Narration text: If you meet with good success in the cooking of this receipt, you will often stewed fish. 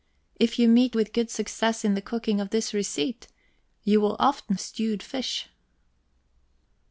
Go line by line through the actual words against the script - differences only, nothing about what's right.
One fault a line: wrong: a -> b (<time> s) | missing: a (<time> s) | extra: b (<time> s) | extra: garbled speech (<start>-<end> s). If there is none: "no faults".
no faults